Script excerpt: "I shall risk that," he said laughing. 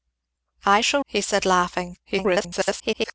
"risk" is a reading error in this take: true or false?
true